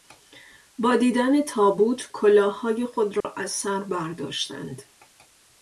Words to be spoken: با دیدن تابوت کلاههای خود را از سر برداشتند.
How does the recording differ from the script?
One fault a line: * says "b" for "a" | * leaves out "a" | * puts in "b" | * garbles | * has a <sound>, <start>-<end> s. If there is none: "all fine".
* has a dropout, 3.2-3.2 s